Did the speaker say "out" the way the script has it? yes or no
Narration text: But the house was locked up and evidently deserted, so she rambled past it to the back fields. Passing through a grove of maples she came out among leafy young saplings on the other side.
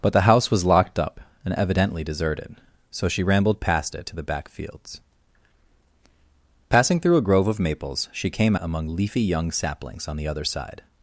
no